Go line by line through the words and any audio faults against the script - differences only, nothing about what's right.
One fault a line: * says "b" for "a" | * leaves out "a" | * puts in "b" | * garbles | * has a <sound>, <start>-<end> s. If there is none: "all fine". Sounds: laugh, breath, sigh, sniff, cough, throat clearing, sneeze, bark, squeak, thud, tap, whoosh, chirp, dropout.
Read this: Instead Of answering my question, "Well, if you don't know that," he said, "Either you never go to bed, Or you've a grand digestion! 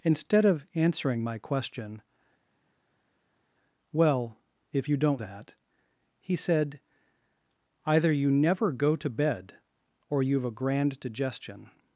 * leaves out "know"